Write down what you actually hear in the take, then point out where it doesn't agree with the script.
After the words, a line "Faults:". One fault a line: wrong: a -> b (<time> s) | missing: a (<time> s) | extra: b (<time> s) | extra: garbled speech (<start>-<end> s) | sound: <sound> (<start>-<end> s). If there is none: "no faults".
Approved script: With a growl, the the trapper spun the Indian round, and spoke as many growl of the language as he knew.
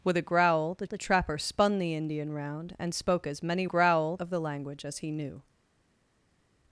With a growl, the the trapper spun the Indian round, and spoke as many growl of the language as he knew.
Faults:
no faults